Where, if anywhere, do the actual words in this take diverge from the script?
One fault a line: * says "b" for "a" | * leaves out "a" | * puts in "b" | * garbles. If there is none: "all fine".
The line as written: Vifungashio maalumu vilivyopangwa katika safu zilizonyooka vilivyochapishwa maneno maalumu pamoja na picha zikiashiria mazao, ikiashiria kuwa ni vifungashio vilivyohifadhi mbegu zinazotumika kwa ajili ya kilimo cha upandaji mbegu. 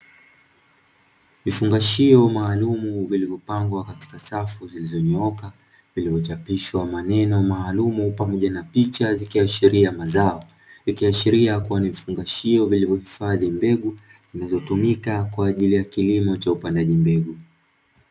all fine